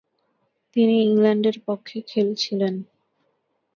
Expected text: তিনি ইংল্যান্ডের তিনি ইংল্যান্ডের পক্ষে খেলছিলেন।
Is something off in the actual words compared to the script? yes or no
yes